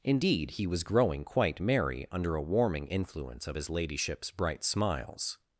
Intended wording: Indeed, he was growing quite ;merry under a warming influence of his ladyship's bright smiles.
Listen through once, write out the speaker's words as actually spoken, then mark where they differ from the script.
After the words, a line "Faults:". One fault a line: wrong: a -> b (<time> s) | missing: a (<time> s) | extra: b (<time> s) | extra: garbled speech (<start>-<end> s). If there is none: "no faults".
Indeed, he was growing quite ;merry under a warming influence of his ladyship's bright smiles.
Faults:
no faults